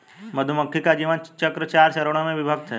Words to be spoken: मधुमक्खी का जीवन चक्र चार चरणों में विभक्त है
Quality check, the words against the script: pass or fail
pass